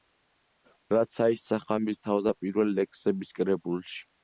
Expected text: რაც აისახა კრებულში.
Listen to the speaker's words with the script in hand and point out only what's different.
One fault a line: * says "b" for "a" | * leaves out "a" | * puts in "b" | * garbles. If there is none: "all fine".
* puts in "მის თავდაპირველ ლექსების"